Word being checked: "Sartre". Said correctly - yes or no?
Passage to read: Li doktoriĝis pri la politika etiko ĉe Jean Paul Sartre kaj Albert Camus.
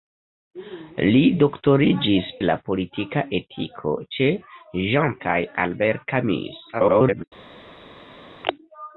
no